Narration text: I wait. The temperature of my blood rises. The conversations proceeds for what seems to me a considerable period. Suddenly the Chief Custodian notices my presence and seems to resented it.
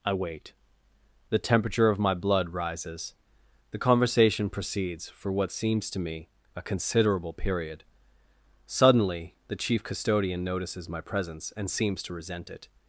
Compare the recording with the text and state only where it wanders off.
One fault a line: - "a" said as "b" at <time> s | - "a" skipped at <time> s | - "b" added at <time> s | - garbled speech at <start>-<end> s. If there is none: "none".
- "conversations" said as "conversation" at 3.8 s
- "resented" said as "resent" at 12.1 s